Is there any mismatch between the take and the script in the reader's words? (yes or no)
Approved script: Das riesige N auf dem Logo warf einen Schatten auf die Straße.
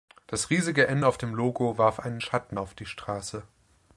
no